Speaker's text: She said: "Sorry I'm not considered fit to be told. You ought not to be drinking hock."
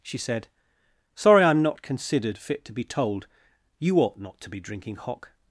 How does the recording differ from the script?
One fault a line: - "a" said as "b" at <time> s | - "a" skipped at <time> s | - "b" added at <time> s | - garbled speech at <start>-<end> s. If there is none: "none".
none